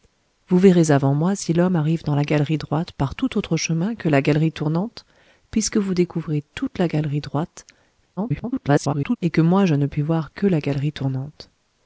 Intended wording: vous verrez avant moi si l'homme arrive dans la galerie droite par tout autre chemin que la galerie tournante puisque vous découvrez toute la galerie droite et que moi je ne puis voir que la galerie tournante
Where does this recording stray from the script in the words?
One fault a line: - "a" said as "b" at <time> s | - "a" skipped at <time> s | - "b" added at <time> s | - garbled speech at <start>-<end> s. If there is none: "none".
- garbled speech at 8.2-9.2 s